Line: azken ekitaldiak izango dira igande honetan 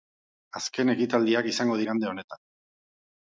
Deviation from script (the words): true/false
true